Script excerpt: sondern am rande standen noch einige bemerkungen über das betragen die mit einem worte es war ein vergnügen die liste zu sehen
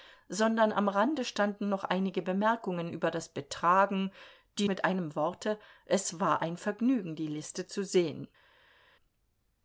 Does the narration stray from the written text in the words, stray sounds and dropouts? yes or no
no